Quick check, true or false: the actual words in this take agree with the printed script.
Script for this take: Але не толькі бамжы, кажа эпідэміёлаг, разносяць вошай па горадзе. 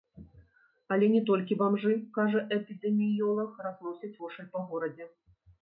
true